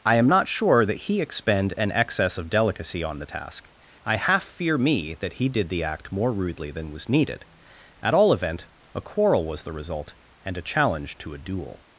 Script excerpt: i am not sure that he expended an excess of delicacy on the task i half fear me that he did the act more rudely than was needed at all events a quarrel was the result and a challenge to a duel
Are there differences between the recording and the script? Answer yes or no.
yes